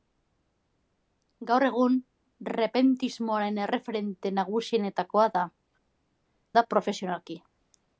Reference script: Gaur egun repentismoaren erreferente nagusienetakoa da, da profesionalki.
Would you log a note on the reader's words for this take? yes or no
no